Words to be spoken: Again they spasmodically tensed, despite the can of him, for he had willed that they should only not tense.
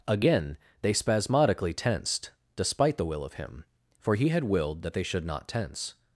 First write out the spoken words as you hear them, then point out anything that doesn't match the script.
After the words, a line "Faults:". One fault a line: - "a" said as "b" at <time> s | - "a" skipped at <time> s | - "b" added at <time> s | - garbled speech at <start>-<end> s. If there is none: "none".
Again they spasmodically tensed, despite the will of him, for he had willed that they should not tense.
Faults:
- "can" said as "will" at 3.0 s
- "only" skipped at 5.2 s